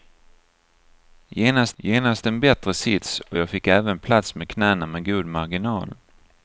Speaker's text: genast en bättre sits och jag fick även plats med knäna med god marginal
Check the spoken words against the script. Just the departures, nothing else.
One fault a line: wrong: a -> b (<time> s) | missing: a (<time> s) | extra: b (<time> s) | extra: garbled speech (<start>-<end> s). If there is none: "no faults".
extra: genast (1.8 s)